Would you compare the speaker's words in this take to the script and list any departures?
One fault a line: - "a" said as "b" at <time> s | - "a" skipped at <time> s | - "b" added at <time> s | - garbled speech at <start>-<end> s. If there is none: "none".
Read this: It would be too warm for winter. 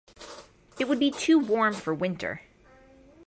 none